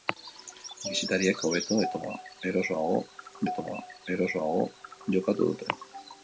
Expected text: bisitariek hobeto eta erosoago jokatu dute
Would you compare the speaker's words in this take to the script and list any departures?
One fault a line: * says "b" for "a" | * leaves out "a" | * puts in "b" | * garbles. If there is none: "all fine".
* puts in "eta erosoago"